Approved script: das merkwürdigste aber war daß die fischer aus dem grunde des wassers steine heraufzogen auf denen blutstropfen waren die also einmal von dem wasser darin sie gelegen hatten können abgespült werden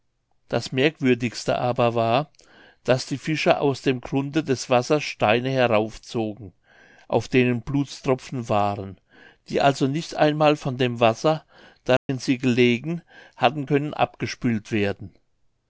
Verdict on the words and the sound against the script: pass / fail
fail